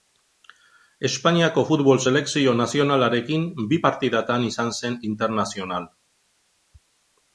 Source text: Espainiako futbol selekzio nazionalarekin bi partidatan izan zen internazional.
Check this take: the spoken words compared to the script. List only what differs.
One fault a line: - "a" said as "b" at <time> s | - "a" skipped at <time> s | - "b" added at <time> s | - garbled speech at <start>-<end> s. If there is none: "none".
none